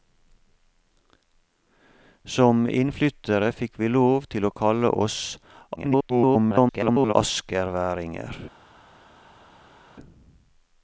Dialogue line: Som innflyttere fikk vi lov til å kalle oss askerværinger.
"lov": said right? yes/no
yes